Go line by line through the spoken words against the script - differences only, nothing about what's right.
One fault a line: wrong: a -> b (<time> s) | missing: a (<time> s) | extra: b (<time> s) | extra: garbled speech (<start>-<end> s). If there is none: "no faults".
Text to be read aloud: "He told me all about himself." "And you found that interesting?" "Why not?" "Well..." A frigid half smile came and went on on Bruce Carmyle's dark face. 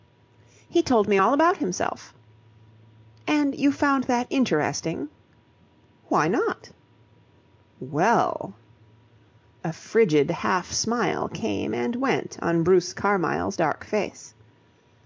missing: on (12.6 s)